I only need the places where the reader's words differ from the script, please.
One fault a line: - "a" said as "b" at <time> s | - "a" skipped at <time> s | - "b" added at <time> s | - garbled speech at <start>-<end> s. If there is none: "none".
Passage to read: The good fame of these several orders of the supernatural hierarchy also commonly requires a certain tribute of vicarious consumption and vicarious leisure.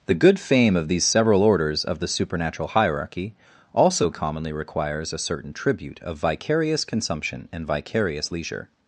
none